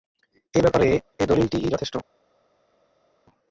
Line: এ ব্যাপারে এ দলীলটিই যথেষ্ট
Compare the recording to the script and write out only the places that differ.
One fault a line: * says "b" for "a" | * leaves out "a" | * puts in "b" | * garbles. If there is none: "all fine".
all fine